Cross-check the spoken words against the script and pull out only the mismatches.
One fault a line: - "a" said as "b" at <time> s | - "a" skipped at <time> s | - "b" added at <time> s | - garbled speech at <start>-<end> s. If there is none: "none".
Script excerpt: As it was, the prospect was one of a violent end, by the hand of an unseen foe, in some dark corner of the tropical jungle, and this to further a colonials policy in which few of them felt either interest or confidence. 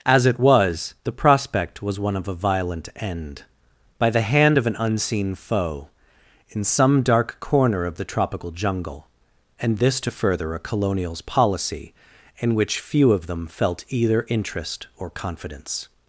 none